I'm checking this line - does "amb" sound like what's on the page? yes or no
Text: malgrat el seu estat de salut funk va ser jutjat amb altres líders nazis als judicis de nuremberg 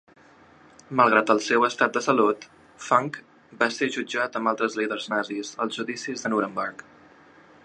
yes